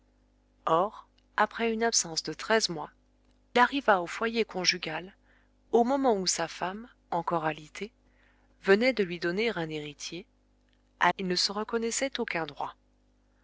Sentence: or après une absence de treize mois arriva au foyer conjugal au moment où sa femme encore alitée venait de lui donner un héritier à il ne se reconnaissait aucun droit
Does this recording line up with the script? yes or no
yes